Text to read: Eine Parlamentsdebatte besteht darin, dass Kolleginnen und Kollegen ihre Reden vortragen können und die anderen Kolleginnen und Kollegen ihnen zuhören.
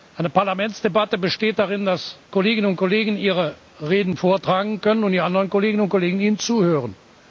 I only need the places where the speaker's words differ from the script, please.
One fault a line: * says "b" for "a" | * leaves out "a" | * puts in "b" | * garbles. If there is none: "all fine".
all fine